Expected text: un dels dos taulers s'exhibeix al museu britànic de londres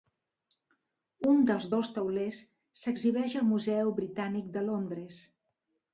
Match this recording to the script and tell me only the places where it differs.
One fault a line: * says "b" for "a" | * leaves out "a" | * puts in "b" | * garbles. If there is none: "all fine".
all fine